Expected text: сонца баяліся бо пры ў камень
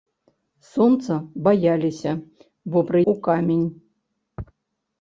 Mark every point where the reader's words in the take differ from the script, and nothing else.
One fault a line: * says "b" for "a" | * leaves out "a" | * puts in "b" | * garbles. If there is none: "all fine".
all fine